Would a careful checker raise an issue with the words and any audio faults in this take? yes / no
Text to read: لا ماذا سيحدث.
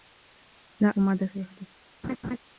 yes